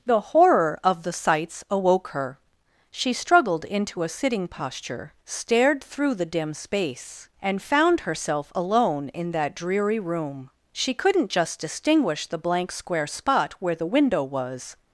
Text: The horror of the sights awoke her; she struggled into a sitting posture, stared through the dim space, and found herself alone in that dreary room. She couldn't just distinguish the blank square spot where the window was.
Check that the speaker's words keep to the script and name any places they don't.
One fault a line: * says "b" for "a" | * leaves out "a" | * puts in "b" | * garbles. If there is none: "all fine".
all fine